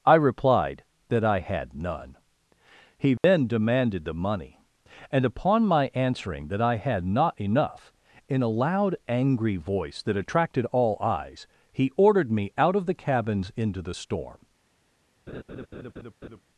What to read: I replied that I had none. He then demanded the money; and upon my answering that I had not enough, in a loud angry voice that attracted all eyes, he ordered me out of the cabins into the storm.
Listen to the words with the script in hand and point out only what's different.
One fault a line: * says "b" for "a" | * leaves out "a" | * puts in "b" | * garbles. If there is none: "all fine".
all fine